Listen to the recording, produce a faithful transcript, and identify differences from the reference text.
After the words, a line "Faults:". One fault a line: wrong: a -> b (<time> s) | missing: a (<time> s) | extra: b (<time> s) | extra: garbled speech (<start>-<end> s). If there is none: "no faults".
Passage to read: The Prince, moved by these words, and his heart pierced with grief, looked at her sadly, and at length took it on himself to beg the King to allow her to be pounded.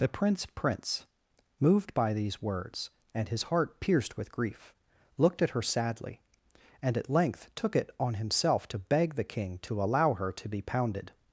The Prince Prince, moved by these words, and his heart pierced with grief, looked at her sadly, and at length took it on himself to beg the King to allow her to be pounded.
Faults:
extra: Prince (0.5 s)